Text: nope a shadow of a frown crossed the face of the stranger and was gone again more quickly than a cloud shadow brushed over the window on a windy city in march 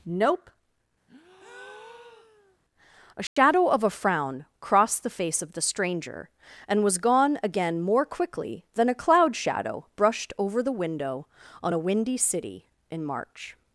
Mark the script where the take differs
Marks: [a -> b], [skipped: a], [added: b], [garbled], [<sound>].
nope [breath] a shadow [dropout] of a frown crossed the face of the stranger and was gone again more quickly than a cloud shadow brushed over the window on a windy city in march